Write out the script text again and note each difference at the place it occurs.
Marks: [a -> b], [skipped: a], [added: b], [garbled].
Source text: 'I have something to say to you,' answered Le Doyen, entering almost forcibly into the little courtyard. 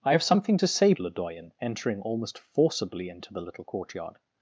'I have something to say [skipped: to you,' answered] Le Doyen, entering almost forcibly into the little courtyard.